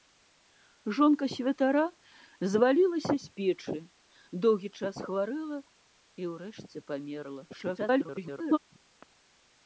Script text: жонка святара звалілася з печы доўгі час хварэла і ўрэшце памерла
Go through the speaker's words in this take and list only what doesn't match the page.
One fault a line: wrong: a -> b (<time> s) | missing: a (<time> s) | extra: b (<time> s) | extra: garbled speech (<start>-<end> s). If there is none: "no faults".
extra: garbled speech (7.5-8.6 s)